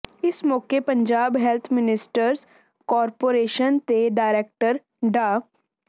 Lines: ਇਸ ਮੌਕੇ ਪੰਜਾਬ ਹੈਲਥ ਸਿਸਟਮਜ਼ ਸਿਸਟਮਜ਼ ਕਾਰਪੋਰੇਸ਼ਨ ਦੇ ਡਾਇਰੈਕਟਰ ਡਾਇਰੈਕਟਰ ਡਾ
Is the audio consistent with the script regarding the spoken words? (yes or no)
no